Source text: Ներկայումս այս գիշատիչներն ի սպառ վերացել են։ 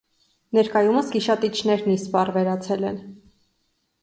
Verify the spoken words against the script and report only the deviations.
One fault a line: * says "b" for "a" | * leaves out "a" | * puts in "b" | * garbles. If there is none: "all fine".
* leaves out "այս"